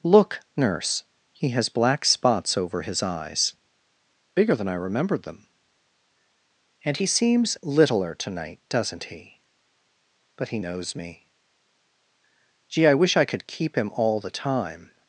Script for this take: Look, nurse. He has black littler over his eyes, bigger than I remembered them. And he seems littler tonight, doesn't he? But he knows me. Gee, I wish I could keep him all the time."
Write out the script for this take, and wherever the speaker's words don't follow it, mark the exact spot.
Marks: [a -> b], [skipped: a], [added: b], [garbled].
Look, nurse. He has black [littler -> spots] over his eyes, bigger than I remembered them. And he seems littler tonight, doesn't he? But he knows me. Gee, I wish I could keep him all the time."